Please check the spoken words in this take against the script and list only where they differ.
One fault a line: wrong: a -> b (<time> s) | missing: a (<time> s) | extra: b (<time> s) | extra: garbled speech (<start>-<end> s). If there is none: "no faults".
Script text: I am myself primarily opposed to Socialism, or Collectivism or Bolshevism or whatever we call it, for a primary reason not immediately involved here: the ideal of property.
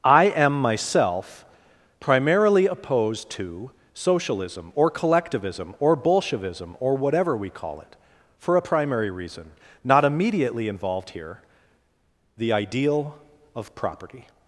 no faults